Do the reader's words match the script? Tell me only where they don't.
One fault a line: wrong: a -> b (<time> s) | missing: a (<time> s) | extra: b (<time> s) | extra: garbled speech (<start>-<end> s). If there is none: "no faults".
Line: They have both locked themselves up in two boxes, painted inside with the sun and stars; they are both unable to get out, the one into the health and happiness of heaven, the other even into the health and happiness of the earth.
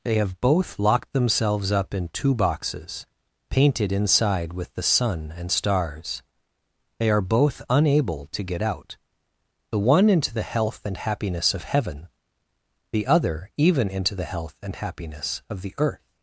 no faults